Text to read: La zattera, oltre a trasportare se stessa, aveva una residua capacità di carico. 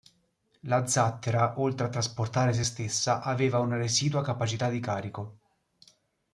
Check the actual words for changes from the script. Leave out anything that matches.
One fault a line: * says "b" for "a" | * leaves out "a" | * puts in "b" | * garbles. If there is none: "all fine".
all fine